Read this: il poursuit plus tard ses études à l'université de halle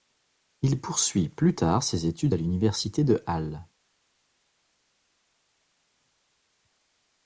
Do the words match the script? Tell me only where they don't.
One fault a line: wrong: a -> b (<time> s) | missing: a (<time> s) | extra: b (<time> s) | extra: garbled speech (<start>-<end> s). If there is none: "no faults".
no faults